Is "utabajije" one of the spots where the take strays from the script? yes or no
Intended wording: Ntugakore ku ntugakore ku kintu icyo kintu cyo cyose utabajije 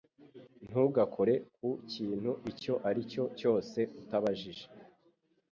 no